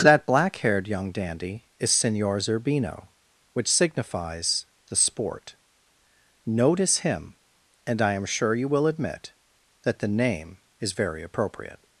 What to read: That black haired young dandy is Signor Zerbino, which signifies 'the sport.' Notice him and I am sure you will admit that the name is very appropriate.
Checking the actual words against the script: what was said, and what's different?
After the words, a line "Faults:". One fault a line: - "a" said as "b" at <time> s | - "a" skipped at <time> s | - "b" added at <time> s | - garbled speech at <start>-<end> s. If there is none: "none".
That black haired young dandy is Signor Zerbino, which signifies 'the sport.' Notice him and I am sure you will admit that the name is very appropriate.
Faults:
none